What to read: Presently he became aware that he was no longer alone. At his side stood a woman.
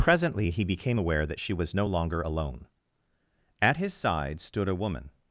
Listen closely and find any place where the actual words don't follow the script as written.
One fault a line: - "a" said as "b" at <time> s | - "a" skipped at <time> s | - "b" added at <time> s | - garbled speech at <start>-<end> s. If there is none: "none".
- "he" said as "she" at 1.4 s